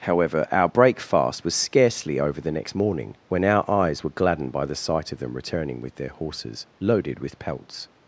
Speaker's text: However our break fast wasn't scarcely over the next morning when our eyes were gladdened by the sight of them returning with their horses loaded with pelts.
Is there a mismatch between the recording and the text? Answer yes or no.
yes